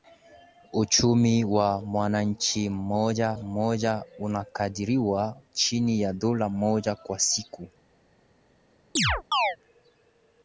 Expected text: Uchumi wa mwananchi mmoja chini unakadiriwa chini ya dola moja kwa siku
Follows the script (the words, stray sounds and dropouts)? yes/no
no